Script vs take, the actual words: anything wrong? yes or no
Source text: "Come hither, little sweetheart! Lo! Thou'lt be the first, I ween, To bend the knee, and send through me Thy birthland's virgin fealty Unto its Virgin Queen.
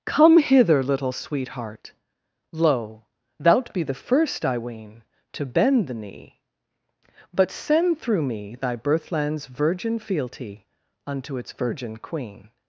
yes